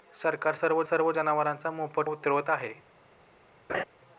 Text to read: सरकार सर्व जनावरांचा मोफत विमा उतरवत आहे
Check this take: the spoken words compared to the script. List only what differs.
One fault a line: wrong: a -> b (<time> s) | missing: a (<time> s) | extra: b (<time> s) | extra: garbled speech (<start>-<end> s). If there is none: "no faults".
extra: सर्व (0.8 s)
missing: विमा (2.1 s)